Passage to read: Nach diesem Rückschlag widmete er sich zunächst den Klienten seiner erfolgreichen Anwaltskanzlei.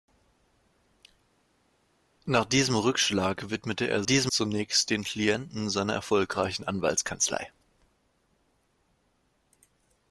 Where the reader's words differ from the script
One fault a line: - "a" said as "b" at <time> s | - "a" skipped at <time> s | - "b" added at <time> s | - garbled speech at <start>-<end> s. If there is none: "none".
- "sich" said as "diesem" at 4.0 s